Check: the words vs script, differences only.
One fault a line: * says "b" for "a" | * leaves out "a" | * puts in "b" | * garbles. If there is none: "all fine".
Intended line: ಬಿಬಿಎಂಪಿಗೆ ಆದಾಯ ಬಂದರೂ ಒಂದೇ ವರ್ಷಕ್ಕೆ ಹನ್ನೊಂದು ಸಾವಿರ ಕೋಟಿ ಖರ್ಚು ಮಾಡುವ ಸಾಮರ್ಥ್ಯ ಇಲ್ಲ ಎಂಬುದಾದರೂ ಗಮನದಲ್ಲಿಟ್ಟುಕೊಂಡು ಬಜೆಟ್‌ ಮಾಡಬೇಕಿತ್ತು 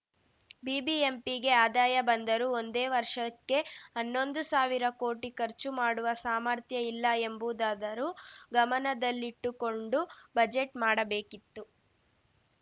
all fine